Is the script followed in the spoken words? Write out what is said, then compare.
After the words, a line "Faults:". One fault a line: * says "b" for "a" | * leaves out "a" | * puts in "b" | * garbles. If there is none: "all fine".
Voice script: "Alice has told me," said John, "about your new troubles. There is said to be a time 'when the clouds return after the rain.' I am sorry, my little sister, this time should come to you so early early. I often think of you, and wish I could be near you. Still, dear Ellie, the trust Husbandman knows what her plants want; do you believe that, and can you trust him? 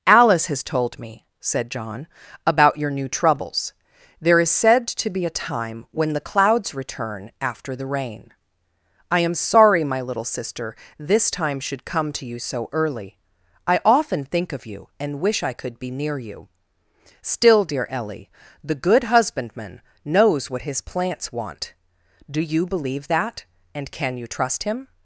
"Alice has told me," said John, "about your new troubles. There is said to be a time 'when the clouds return after the rain.' I am sorry, my little sister, this time should come to you so early. I often think of you, and wish I could be near you. Still, dear Ellie, the good Husbandman knows what his plants want; do you believe that, and can you trust him?
Faults:
* leaves out "early"
* says "good" for "trust"
* says "his" for "her"